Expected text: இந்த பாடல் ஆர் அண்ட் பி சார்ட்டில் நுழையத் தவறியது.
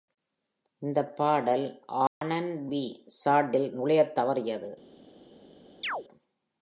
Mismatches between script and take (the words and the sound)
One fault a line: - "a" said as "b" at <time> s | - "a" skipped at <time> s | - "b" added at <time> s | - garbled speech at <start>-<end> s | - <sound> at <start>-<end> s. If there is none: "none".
- dropout at 2.1-2.2 s
- chirp at 5.8-6.1 s